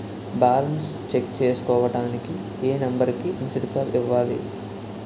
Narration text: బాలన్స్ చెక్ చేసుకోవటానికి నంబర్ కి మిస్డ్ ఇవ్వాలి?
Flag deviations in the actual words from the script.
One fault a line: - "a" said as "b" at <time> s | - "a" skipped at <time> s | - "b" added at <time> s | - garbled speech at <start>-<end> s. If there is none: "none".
- "ఏ" added at 2.6 s
- "కాల్" added at 3.7 s